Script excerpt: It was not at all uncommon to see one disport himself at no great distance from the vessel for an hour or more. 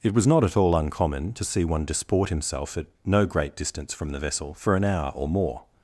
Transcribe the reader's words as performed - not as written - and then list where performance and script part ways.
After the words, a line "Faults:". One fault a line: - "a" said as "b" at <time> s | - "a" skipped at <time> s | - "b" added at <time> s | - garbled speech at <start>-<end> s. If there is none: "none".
It was not at all uncommon to see one disport himself at no great distance from the vessel for an hour or more.
Faults:
none